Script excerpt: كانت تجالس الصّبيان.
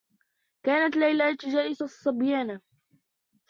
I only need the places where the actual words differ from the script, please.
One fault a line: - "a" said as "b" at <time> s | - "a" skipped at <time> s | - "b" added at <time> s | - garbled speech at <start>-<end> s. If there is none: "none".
- "ليلى" added at 1.0 s